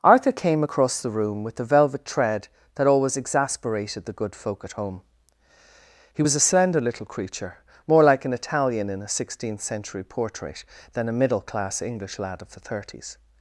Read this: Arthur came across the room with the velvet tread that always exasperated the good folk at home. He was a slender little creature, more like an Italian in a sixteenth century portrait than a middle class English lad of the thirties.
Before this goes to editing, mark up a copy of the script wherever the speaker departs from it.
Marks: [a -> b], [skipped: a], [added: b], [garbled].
Arthur came across the room with the velvet tread that always exasperated the good folk at home. He was a slender little creature, more like an Italian in a sixteenth century portrait than a middle class English lad of the thirties.